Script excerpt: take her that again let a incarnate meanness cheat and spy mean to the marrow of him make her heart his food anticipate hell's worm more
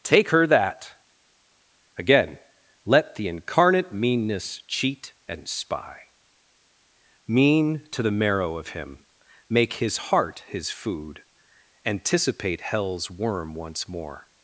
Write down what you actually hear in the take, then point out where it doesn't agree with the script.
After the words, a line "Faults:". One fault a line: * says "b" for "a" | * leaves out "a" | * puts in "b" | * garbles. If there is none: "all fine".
take her that again let the incarnate meanness cheat and spy mean to the marrow of him make his heart his food anticipate hell's worm once more
Faults:
* says "the" for "a"
* says "his" for "her"
* puts in "once"